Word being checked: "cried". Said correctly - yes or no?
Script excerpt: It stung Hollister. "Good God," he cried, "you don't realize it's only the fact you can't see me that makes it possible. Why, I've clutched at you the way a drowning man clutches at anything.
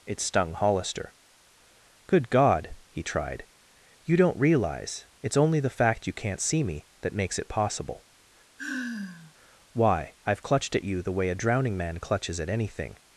no